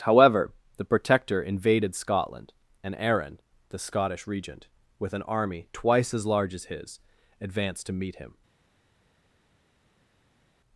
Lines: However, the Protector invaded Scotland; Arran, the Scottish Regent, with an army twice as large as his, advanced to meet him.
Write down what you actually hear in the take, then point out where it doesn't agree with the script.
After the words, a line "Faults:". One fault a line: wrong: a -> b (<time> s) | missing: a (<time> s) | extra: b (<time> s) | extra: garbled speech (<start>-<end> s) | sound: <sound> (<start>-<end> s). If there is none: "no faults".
However, the Protector invaded Scotland; and Arran, the Scottish Regent, with an army twice as large as his, advanced to meet him.
Faults:
extra: and (2.8 s)